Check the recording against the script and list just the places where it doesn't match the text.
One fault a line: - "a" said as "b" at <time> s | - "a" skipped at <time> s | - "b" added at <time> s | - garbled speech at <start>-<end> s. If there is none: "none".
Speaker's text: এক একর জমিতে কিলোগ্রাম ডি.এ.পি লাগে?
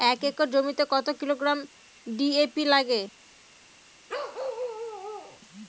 - "কত" added at 0.9 s